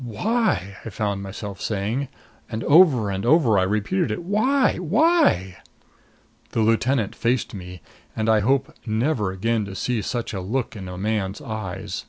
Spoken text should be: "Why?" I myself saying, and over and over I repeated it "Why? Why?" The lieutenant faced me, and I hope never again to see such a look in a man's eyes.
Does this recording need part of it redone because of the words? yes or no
yes